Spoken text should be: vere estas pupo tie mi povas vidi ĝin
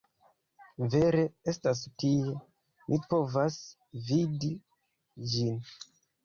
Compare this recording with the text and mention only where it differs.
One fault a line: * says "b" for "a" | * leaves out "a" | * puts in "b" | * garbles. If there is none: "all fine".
* leaves out "pupo"